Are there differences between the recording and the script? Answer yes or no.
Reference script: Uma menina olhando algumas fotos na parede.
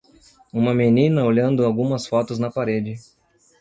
no